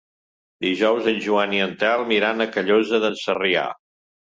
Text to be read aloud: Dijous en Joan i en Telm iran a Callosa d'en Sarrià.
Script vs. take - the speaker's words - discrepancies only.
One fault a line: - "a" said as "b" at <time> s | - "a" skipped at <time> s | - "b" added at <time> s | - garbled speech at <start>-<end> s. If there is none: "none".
none